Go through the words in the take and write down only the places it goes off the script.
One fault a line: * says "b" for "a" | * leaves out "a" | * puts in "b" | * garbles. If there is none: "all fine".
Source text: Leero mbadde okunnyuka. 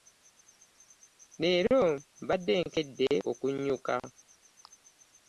* puts in "nkedde"